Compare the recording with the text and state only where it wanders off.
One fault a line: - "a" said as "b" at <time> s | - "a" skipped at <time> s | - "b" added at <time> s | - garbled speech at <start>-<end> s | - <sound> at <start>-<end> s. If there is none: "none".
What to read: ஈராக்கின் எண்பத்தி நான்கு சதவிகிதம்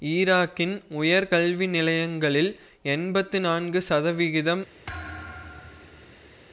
- "உயர் கல்வி நிலையங்களில்" added at 0.9 s
- thud at 4.9-6.4 s